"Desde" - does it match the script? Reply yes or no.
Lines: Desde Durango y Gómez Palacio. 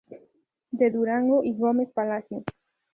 no